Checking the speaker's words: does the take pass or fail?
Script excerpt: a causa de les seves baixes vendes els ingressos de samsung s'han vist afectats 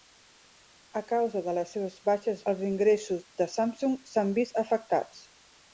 fail